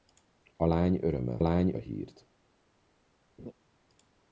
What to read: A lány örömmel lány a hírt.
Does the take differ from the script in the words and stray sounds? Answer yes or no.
yes